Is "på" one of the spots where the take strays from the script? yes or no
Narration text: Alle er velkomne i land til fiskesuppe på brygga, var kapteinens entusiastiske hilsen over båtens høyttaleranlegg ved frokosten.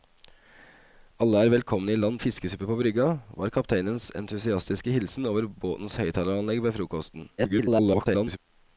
no